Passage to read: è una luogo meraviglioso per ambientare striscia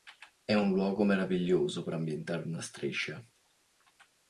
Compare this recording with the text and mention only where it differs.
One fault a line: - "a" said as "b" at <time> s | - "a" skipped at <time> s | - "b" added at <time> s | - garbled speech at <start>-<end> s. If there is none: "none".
- "una" said as "un" at 0.6 s
- "una" added at 2.4 s